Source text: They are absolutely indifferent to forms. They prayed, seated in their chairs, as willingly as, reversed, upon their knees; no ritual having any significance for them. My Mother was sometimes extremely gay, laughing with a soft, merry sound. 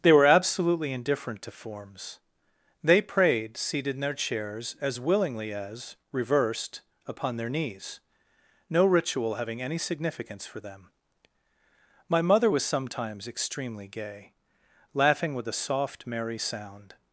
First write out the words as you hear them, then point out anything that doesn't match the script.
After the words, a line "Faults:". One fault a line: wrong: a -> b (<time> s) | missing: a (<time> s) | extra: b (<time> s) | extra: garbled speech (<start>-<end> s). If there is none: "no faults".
They were absolutely indifferent to forms. They prayed, seated in their chairs, as willingly as, reversed, upon their knees; no ritual having any significance for them. My Mother was sometimes extremely gay, laughing with a soft, merry sound.
Faults:
wrong: are -> were (0.1 s)